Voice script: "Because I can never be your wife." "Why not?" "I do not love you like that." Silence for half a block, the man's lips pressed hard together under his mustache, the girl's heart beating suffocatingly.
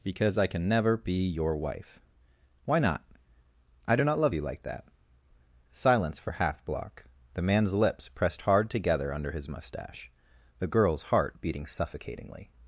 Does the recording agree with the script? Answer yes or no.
no